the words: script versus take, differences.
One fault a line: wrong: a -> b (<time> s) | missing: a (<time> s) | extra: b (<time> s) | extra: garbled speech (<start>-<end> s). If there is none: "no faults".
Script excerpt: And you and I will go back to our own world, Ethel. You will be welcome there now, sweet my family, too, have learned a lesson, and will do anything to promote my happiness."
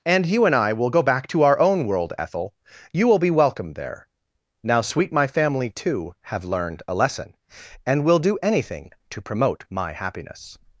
no faults